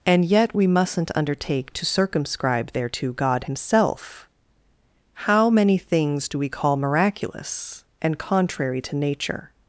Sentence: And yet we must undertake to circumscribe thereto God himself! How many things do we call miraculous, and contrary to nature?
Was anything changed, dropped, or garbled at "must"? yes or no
yes